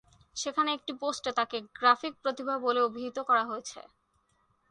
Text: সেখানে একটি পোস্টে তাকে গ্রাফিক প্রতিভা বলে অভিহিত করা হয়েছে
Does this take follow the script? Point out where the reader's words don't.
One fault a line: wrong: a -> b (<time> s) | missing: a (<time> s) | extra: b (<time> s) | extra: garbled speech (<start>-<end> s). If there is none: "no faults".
no faults